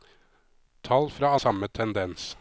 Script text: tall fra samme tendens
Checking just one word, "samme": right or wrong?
right